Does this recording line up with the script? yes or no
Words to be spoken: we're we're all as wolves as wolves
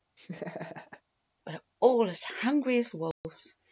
no